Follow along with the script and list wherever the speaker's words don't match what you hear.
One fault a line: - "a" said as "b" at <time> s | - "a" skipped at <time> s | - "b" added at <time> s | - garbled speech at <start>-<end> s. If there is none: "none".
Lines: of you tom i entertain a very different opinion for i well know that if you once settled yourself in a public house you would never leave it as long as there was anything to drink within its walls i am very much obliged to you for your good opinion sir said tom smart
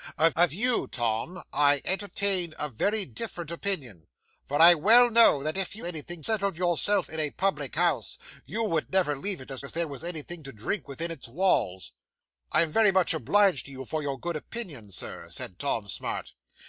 - "of" added at 0.3 s
- "once" said as "anything" at 5.8 s
- "long" skipped at 9.6 s